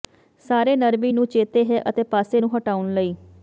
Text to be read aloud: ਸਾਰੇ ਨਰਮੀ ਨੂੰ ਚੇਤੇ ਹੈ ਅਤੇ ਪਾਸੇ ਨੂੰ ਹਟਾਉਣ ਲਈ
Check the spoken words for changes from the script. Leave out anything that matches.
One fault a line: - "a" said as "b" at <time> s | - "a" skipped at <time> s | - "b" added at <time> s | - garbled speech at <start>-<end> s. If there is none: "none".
none